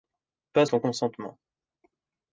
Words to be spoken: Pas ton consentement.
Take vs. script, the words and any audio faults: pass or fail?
pass